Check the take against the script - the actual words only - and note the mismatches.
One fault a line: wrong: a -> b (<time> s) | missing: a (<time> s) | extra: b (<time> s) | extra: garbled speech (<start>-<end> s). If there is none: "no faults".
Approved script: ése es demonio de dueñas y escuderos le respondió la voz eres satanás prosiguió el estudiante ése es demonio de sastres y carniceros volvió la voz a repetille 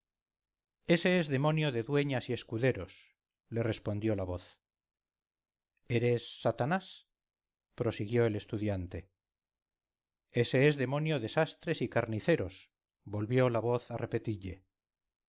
no faults